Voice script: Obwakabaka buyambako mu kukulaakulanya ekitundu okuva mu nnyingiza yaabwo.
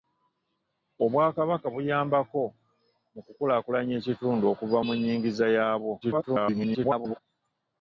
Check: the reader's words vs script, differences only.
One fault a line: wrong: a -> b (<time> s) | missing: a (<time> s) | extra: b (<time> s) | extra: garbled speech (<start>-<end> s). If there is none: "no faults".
extra: garbled speech (6.0-7.2 s)